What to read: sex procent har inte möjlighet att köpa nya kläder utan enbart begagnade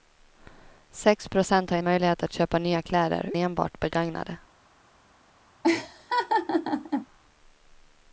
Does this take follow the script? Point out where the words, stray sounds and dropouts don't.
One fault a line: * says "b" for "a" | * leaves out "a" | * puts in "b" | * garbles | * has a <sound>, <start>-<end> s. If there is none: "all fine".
* leaves out "inte"
* leaves out "utan"
* has a laugh, 5.6-7.1 s